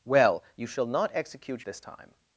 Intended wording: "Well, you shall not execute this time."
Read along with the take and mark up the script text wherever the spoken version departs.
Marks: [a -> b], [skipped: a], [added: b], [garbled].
"Well, you shall not execute this time."